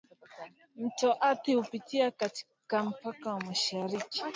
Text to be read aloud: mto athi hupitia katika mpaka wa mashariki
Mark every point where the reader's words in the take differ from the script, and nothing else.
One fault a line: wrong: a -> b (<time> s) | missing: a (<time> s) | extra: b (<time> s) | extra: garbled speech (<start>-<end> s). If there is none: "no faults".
no faults